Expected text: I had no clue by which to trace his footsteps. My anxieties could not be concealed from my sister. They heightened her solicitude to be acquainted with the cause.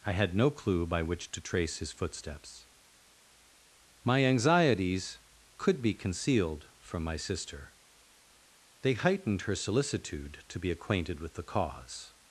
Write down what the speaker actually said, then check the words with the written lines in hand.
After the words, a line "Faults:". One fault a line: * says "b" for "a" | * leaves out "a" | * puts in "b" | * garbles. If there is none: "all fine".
I had no clue by which to trace his footsteps. My anxieties could be concealed from my sister. They heightened her solicitude to be acquainted with the cause.
Faults:
* leaves out "not"